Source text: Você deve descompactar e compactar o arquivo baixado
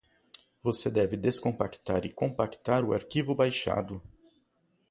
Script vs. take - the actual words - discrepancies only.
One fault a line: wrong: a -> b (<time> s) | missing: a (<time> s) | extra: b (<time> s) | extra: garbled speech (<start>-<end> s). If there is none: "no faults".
no faults